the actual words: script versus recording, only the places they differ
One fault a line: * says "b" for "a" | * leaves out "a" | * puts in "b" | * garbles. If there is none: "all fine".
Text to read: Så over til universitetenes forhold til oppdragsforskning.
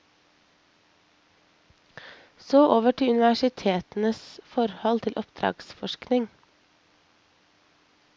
all fine